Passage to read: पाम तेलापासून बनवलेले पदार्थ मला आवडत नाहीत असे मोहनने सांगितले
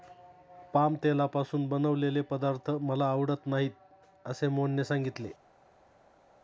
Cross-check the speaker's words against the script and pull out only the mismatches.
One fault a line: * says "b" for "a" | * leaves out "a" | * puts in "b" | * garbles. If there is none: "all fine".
all fine